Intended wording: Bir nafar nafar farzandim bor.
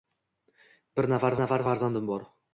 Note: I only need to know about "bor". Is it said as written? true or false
true